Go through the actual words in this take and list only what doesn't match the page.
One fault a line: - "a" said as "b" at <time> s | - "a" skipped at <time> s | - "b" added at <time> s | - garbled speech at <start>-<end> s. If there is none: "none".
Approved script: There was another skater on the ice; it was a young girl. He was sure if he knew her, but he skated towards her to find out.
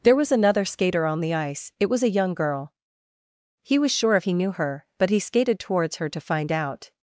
none